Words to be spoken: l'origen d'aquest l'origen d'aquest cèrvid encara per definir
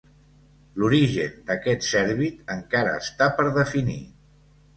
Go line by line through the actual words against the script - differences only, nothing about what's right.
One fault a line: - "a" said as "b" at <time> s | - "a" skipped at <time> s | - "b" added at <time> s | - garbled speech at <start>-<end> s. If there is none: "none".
- "l'origen d'aquest" skipped at 1.9 s
- "està" added at 3.0 s